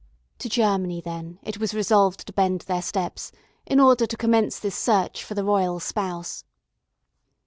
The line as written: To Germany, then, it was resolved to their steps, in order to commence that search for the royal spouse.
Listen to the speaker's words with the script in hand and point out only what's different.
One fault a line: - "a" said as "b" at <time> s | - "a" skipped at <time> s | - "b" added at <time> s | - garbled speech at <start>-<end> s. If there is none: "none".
- "bend" added at 2.3 s
- "that" said as "this" at 4.6 s